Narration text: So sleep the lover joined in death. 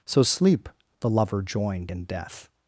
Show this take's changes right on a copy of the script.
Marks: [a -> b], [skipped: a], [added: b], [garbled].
So sleep the lover joined in death.